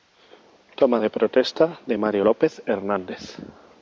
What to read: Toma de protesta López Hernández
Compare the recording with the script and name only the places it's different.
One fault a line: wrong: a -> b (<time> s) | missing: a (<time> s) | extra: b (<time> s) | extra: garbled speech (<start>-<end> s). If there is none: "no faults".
extra: de Mario (1.9 s)